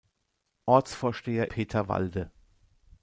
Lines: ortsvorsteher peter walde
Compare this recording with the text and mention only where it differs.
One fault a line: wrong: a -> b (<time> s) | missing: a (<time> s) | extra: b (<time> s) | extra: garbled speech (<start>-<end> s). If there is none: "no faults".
no faults